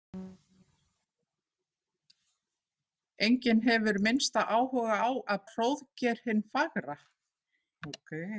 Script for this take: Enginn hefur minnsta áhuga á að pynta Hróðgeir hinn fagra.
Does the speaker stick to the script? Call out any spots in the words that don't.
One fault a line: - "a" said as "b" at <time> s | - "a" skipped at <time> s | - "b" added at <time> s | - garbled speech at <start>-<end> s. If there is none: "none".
- "pynta" skipped at 5.4 s